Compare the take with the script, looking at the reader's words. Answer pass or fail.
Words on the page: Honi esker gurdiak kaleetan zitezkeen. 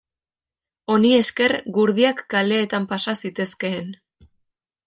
fail